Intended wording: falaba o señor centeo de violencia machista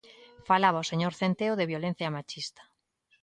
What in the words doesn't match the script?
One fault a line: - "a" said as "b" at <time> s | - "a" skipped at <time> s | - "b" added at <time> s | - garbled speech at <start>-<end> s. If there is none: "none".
none